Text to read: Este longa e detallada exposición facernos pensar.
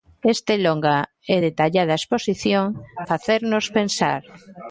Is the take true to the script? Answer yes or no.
yes